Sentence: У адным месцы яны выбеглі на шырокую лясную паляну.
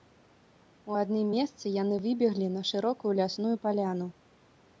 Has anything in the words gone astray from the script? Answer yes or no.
no